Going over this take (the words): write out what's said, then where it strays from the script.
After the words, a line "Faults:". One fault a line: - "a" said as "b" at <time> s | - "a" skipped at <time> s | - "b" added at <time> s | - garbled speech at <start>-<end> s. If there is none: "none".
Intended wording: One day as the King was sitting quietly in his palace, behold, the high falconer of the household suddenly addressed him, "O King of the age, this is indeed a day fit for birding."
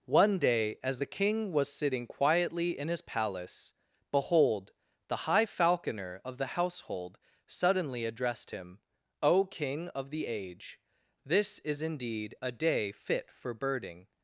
One day as the King was sitting quietly in his palace, behold, the high falconer of the household suddenly addressed him, "O King of the age, this is indeed a day fit for birding."
Faults:
none